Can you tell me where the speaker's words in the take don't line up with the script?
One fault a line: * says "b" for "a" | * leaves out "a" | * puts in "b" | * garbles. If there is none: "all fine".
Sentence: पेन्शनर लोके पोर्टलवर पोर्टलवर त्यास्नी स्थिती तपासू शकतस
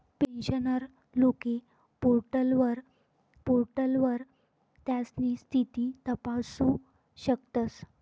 all fine